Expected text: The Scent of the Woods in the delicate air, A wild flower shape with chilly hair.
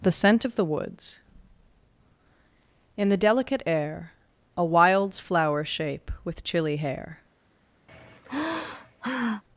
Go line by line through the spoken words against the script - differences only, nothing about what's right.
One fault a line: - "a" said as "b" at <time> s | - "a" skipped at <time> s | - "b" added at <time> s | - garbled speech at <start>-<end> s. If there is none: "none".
- "wild" said as "wilds" at 4.6 s